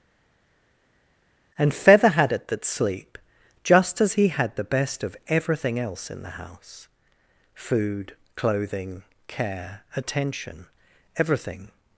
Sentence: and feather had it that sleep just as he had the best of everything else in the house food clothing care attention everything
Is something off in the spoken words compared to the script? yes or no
no